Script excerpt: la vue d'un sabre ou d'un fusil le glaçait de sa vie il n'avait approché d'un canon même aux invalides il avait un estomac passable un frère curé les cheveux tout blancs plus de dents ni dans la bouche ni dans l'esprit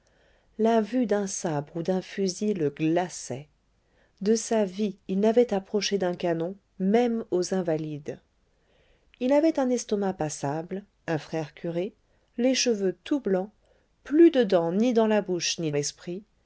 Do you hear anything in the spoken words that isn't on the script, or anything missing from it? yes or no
yes